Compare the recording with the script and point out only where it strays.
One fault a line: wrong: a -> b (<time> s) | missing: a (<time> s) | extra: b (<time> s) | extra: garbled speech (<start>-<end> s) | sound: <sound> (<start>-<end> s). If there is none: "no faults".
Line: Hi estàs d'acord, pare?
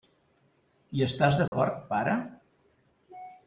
sound: dropout (1.5-1.5 s)